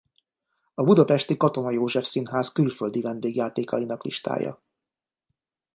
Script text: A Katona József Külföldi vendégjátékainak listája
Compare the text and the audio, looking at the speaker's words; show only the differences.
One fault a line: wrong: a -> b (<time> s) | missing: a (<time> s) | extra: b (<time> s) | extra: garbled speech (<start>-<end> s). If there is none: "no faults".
extra: budapesti (0.8 s)
extra: Színház (2.0 s)